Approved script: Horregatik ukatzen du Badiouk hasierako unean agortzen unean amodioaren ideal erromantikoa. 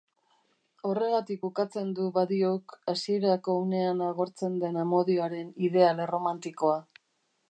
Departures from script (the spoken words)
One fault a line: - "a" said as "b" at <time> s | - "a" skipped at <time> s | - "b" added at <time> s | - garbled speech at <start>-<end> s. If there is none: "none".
- "unean" said as "den" at 4.6 s